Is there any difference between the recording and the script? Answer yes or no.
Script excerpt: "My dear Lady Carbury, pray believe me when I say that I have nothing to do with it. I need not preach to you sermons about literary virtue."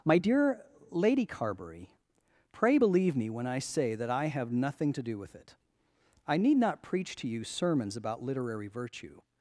no